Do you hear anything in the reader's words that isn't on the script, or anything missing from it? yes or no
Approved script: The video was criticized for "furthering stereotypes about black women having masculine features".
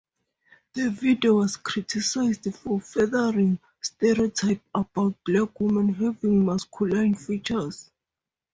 no